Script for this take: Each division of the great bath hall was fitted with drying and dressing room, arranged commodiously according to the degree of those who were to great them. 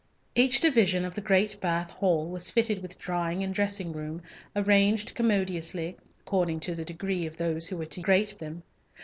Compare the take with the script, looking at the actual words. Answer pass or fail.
pass